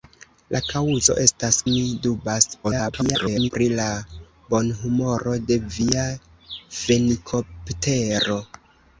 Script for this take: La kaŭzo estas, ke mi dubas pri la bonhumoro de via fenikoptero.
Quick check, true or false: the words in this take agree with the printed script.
false